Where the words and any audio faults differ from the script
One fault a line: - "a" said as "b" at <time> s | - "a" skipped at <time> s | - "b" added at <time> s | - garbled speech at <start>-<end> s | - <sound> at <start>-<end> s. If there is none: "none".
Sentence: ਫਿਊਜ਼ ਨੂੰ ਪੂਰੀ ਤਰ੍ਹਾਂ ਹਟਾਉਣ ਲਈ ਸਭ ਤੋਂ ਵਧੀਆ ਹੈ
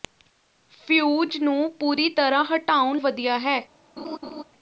- "ਲਈ ਸਭ ਤੋਂ" skipped at 3.0 s
- laugh at 4.0-4.4 s